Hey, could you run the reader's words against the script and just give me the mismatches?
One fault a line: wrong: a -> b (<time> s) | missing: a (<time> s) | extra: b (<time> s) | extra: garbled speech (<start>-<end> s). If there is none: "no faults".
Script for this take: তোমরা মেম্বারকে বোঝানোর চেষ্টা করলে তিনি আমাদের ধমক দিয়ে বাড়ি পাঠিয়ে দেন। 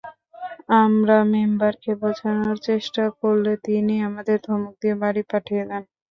wrong: তোমরা -> আমরা (0.8 s)